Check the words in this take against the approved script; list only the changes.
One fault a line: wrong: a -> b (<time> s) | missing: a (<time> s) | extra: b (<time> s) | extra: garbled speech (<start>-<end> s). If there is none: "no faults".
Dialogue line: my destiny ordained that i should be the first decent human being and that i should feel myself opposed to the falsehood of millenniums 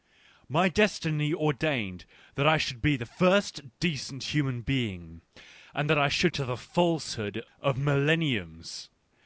missing: feel myself opposed (6.3 s)